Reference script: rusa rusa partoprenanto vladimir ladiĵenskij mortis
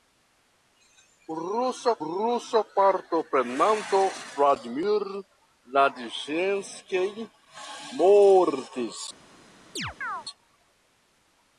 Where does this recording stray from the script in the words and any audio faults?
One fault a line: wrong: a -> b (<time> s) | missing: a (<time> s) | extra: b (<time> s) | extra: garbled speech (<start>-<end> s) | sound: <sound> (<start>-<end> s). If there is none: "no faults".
sound: chirp (9.8-10.3 s)